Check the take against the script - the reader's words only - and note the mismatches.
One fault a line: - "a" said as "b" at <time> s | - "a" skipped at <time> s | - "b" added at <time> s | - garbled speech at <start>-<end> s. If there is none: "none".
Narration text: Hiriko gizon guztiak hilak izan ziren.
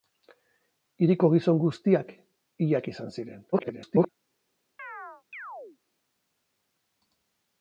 - garbled speech at 3.5-4.1 s